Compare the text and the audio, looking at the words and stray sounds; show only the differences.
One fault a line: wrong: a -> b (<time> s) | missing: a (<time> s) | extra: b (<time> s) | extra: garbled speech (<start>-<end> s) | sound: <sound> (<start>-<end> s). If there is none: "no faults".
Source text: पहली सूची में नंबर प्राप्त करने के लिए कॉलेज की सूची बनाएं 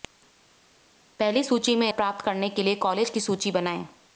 missing: नंबर (1.9 s)